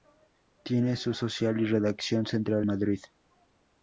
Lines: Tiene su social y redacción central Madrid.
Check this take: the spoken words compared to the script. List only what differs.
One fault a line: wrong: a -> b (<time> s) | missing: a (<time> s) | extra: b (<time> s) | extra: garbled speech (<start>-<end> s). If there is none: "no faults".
no faults